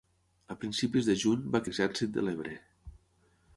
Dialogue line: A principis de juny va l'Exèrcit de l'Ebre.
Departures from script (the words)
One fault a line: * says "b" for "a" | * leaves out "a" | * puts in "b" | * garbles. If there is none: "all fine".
all fine